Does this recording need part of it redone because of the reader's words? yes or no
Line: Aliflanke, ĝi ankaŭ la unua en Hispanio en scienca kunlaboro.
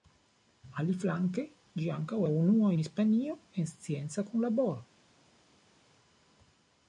no